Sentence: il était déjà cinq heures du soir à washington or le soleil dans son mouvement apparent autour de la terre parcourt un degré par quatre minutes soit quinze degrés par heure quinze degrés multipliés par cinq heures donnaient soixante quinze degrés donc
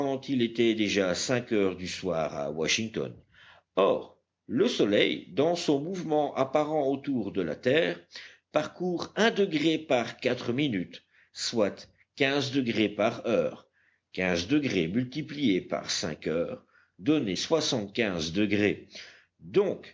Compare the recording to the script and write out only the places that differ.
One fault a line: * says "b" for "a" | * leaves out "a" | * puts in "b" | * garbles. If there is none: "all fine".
all fine